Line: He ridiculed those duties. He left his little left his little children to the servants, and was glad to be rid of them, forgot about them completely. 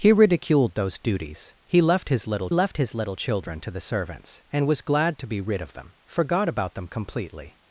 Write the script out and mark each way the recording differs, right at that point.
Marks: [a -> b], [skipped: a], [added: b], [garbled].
He ridiculed those duties. He left his little left his little children to the servants, and was glad to be rid of them, forgot about them completely.